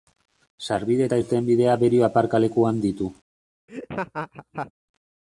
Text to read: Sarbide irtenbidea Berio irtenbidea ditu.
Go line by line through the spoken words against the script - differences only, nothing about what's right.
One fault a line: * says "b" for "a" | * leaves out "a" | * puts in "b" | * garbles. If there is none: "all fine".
* puts in "eta"
* says "aparkalekuan" for "irtenbidea"